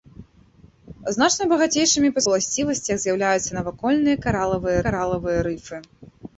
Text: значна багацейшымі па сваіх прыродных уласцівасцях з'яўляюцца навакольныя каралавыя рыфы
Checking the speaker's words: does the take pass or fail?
fail